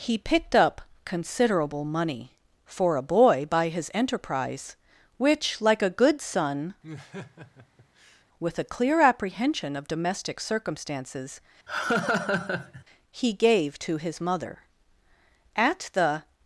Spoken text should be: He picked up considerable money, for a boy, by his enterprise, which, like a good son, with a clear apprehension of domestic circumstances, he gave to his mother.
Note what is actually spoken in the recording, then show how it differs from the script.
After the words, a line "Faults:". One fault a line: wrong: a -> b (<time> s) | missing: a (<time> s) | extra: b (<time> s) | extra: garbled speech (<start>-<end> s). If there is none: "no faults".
He picked up considerable money, for a boy, by his enterprise, which, like a good son, with a clear apprehension of domestic circumstances, he gave to his mother. At the
Faults:
extra: At the (15.5 s)